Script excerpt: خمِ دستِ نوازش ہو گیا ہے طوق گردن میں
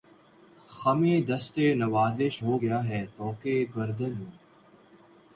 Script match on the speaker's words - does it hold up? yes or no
yes